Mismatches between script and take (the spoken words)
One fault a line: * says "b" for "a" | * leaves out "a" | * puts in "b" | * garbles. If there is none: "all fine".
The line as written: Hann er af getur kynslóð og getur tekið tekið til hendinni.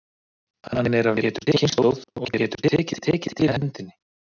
all fine